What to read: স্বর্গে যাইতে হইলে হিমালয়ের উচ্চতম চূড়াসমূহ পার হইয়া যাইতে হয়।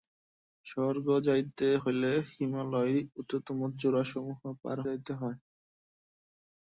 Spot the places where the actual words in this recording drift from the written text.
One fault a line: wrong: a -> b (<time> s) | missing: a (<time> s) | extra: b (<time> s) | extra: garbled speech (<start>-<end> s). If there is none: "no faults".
missing: হইয়া (4.8 s)